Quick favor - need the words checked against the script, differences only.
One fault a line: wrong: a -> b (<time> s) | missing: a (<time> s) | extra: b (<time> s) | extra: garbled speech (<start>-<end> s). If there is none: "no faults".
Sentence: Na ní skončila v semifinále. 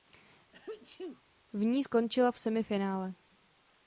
wrong: Na -> V (1.5 s)